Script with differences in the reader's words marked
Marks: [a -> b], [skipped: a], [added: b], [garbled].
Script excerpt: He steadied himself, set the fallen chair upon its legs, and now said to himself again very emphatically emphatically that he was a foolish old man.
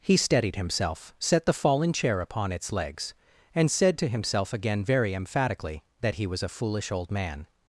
He steadied himself, set the fallen chair upon its legs, and [skipped: now] said to himself again very emphatically [skipped: emphatically] that he was a foolish old man.